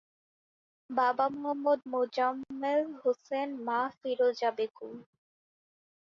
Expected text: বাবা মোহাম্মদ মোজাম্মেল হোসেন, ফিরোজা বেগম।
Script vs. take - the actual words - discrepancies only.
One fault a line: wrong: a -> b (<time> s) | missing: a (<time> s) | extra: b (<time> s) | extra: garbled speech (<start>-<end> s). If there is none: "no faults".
extra: মা (3.7 s)